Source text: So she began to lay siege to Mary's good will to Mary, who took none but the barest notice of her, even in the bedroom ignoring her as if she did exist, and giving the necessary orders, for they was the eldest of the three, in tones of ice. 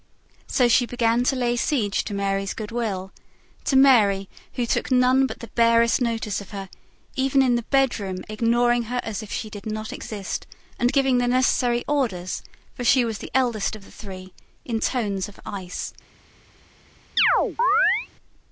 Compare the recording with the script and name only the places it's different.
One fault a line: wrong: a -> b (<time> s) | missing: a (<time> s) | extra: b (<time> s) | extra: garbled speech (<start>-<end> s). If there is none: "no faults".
extra: not (9.7 s)
wrong: they -> she (12.8 s)